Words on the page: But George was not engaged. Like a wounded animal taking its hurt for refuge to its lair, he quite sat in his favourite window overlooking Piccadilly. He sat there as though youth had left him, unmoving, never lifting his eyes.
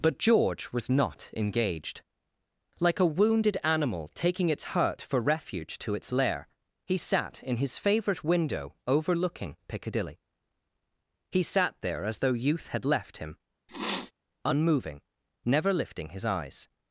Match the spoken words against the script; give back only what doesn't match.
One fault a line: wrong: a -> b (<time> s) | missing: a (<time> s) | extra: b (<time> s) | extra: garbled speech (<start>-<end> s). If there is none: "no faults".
missing: quite (7.0 s)